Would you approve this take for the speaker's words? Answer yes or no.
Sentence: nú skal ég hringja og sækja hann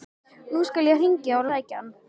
yes